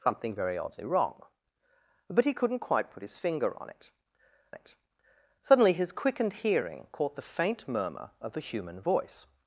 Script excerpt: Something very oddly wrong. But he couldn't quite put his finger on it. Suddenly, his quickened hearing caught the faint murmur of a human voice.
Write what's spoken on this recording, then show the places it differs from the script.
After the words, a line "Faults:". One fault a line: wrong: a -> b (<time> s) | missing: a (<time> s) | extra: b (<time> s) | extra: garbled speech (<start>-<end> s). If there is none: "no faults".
Something very oddly wrong. But he couldn't quite put his finger on it it. Suddenly, his quickened hearing caught the faint murmur of a human voice.
Faults:
extra: it (4.5 s)